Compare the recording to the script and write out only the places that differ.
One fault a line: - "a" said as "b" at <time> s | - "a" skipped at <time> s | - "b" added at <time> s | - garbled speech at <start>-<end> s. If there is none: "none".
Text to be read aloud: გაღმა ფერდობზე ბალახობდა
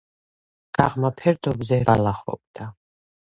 none